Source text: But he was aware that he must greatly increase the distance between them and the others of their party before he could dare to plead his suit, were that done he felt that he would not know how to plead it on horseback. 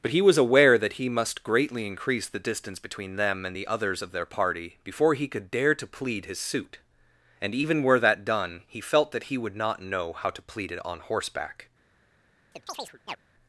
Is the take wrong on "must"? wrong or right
right